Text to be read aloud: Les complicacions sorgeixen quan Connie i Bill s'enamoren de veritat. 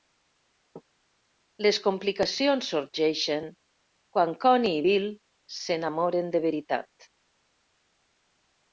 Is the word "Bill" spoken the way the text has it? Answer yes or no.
yes